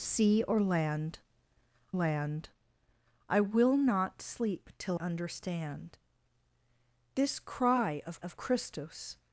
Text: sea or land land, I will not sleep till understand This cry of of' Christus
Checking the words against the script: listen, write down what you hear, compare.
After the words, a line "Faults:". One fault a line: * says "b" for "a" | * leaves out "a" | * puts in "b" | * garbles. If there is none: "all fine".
sea or land land, I will not sleep till understand This cry of of' Christus
Faults:
all fine